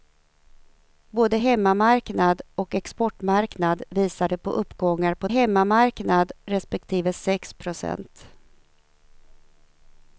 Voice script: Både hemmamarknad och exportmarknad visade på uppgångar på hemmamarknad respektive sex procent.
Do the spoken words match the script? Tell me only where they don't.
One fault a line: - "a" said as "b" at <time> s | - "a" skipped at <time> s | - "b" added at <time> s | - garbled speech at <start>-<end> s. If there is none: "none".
none